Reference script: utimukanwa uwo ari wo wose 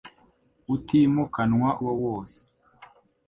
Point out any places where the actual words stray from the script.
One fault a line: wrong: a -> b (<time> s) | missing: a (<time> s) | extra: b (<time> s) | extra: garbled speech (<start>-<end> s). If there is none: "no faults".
missing: uwo ari (1.7 s)